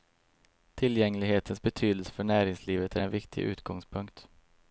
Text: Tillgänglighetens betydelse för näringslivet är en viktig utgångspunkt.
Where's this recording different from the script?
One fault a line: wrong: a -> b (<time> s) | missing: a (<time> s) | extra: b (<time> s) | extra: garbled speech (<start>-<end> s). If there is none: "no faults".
no faults